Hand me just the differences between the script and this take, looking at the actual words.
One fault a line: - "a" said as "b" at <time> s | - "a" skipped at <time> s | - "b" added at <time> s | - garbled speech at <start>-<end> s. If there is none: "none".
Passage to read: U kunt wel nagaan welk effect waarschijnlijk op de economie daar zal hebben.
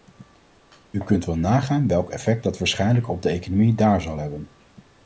- "dat" added at 2.4 s